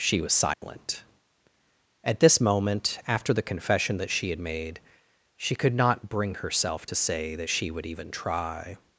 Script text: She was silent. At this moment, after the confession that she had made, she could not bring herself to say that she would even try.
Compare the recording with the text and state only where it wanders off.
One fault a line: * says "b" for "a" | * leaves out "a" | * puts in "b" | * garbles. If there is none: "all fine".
all fine